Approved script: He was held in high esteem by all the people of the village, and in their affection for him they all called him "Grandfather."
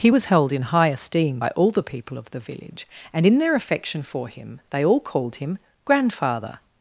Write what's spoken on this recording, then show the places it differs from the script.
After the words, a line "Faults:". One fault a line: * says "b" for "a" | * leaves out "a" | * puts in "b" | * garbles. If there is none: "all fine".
He was held in high esteem by all the people of the village, and in their affection for him they all called him "Grandfather."
Faults:
all fine